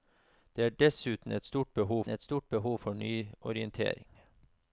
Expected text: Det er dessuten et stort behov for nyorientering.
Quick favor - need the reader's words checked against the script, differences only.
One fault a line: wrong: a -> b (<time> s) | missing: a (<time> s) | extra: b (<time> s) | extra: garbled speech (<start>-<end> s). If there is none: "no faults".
extra: et stort behov (2.1 s)